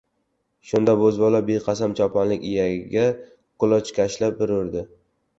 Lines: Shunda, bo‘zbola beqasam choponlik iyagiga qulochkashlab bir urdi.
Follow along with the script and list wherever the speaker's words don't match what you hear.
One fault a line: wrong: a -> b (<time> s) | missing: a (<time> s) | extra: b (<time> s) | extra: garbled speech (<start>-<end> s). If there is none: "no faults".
no faults